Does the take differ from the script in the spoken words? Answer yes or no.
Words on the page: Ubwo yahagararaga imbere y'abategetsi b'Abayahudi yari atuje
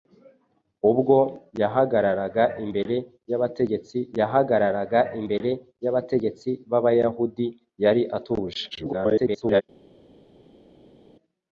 yes